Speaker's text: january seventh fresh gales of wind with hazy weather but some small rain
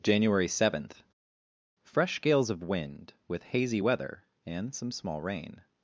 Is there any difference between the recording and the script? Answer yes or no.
yes